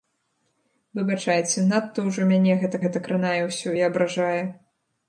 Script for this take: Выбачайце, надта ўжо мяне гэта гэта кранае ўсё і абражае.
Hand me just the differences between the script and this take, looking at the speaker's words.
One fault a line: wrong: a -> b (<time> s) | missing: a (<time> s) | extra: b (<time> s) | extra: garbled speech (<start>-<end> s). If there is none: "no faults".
no faults